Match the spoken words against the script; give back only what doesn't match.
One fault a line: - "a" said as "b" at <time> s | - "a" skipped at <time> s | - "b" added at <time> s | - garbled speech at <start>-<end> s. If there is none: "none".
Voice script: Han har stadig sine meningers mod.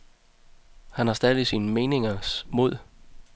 none